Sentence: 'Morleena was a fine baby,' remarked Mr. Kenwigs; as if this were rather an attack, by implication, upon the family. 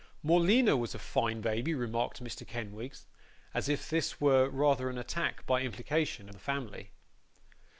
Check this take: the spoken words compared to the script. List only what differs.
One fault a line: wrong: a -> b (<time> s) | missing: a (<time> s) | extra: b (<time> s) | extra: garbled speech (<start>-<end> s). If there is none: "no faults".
missing: upon (6.3 s)